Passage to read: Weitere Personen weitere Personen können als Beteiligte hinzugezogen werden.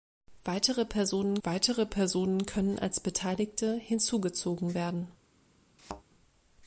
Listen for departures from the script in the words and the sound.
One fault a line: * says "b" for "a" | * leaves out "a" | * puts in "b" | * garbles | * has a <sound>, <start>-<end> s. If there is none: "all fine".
* has a thud, 5.8-6.0 s